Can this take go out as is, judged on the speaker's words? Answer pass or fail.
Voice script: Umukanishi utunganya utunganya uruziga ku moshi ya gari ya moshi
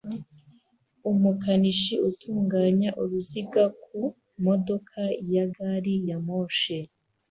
fail